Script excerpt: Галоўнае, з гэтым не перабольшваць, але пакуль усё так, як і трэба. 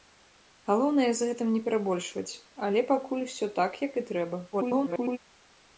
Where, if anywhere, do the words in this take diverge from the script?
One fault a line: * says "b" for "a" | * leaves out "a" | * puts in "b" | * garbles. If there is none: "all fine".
* garbles